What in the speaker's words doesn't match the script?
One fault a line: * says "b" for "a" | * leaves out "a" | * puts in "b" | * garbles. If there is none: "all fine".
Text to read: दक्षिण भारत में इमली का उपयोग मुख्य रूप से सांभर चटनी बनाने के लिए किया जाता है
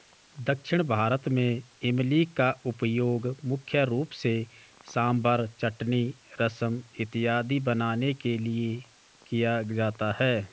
* puts in "रसम इत्यादि"